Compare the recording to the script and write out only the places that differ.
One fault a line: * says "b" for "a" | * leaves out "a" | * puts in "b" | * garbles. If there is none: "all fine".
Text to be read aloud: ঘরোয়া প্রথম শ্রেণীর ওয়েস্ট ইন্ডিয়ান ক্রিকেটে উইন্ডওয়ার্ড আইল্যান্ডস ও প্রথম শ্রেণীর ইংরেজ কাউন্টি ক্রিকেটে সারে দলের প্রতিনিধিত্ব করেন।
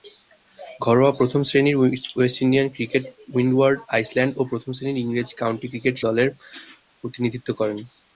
* leaves out "সারে"